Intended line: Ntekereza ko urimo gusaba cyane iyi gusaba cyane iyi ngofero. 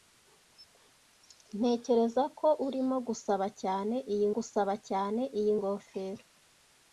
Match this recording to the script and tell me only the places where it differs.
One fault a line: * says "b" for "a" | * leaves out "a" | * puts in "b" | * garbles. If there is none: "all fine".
all fine